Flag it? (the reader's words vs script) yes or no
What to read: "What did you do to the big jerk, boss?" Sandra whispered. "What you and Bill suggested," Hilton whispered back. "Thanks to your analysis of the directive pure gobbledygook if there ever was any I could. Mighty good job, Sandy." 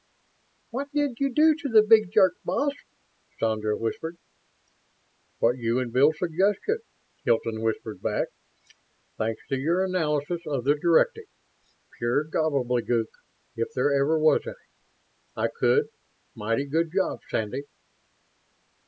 no